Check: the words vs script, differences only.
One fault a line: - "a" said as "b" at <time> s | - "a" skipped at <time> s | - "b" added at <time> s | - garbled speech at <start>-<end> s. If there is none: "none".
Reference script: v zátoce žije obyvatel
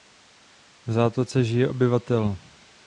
none